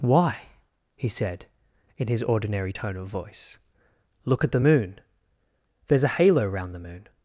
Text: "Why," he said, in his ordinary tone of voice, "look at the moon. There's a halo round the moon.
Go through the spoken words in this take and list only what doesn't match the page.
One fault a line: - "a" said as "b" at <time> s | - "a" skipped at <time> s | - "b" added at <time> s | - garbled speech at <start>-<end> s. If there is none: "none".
none